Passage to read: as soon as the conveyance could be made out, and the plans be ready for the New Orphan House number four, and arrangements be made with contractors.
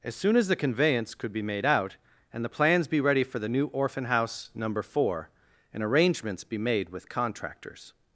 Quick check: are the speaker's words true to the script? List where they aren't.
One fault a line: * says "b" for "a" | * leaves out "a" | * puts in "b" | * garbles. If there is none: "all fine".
all fine